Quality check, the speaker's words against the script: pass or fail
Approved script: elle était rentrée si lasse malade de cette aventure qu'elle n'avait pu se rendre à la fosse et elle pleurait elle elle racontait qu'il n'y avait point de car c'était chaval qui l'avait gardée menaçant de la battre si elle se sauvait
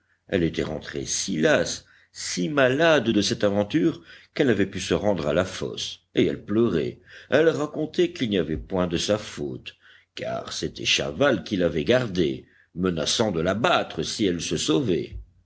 fail